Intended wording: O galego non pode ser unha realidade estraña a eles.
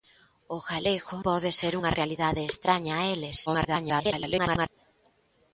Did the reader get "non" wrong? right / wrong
wrong